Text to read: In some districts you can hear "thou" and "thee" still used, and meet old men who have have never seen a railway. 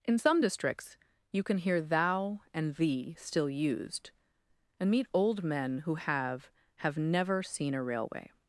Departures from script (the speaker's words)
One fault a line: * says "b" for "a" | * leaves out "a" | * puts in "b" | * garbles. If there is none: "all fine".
all fine